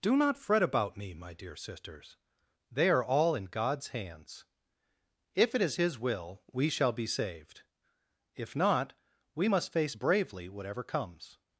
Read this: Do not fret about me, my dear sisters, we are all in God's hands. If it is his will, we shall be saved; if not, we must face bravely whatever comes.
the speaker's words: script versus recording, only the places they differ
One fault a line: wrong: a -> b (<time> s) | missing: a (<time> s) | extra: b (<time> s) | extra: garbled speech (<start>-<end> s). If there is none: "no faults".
wrong: we -> they (2.7 s)